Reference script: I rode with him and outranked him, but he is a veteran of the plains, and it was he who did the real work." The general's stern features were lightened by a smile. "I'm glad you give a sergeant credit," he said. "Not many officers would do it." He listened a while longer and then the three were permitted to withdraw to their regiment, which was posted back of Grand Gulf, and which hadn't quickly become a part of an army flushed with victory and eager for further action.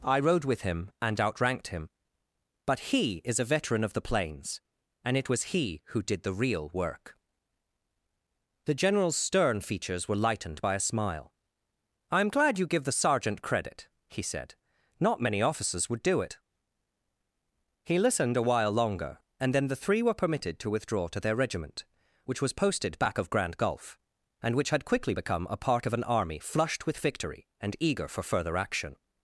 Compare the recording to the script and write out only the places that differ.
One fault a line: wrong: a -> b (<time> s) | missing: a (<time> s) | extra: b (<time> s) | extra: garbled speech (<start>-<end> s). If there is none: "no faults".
wrong: a -> the (12.8 s)
wrong: hadn't -> had (24.7 s)